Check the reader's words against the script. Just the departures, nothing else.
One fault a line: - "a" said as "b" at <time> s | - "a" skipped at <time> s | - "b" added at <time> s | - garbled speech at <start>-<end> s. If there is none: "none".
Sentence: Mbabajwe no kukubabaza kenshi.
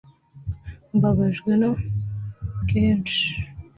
- "kukubabaza" skipped at 1.7 s